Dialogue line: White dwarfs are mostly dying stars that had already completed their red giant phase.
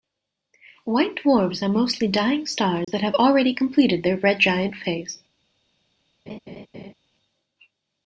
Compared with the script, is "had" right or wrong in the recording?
wrong